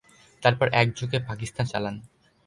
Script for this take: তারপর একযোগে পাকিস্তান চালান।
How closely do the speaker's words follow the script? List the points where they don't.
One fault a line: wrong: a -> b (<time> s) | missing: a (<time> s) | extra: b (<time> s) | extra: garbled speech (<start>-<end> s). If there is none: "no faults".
no faults